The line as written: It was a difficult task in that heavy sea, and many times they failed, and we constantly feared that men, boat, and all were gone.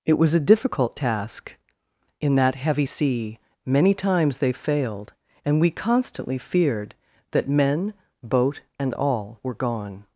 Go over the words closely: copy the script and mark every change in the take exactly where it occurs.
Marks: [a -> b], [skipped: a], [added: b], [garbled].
It was a difficult task in that heavy sea, [skipped: and] many times they failed, and we constantly feared that men, boat, and all were gone.